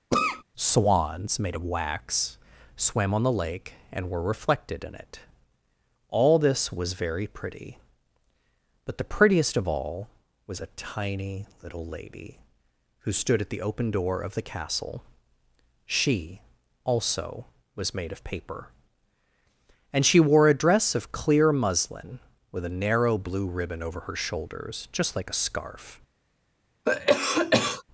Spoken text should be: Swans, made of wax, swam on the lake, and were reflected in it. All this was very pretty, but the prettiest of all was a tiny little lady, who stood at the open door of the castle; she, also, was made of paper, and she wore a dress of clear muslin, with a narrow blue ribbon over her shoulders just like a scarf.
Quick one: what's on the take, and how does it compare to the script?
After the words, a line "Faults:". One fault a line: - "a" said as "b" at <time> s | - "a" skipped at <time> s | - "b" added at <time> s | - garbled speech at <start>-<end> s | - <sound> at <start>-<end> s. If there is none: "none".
Swans, made of wax, swam on the lake, and were reflected in it. All this was very pretty, but the prettiest of all was a tiny little lady, who stood at the open door of the castle; she, also, was made of paper, and she wore a dress of clear muslin, with a narrow blue ribbon over her shoulders just like a scarf.
Faults:
- cough at 0.1-0.4 s
- cough at 26.9-27.8 s